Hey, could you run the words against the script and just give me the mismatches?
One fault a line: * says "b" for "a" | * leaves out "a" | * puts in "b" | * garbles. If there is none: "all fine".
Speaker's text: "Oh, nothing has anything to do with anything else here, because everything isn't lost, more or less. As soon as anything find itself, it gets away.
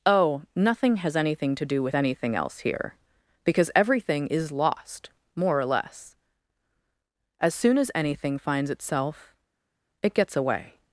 * says "is" for "isn't"
* says "finds" for "find"